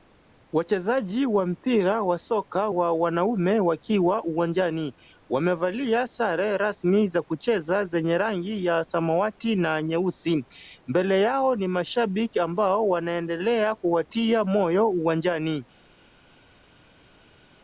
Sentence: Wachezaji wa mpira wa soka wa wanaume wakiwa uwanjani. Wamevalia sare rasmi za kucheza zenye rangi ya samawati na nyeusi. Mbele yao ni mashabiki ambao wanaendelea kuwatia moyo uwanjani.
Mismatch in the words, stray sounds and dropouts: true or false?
false